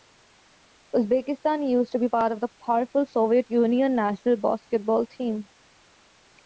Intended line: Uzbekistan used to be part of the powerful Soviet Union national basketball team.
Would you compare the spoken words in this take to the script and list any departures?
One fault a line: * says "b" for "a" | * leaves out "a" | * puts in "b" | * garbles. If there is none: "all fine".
all fine